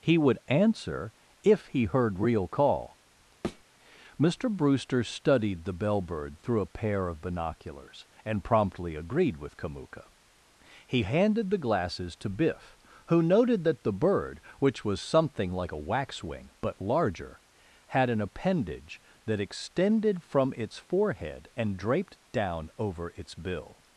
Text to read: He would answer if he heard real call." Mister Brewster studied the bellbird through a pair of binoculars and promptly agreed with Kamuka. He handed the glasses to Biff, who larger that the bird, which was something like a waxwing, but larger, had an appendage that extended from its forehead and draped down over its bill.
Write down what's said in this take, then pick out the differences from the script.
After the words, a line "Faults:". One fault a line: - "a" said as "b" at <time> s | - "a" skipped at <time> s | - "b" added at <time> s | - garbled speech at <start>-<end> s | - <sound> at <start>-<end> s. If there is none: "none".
He would answer if he heard real call." Mister Brewster studied the bellbird through a pair of binoculars and promptly agreed with Kamuka. He handed the glasses to Biff, who noted that the bird, which was something like a waxwing, but larger, had an appendage that extended from its forehead and draped down over its bill.
Faults:
- thud at 3.4-3.6 s
- "larger" said as "noted" at 13.2 s